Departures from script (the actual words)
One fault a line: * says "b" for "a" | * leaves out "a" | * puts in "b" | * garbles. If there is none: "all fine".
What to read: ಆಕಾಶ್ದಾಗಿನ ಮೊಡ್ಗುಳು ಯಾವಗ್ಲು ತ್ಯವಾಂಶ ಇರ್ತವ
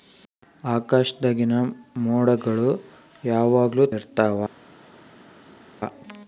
* leaves out "ತ್ಯವಾಂಶ"